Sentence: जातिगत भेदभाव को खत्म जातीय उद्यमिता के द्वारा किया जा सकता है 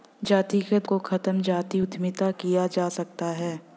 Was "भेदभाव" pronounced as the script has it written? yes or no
no